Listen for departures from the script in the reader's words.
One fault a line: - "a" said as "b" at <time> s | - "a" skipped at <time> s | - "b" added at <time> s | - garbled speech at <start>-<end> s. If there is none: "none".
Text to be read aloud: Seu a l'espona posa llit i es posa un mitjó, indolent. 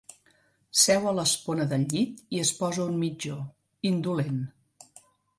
- "posa" said as "del" at 1.7 s